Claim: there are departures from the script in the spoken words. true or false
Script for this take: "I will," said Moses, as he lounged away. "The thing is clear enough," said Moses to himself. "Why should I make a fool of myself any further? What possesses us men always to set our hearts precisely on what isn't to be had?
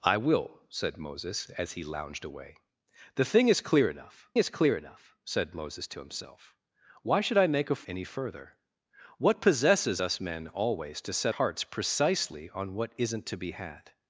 true